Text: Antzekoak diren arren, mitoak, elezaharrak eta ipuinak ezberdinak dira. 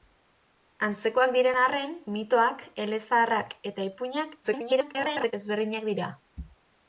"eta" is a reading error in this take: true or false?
false